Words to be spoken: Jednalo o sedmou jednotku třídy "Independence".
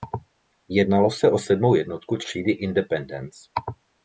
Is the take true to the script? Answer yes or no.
no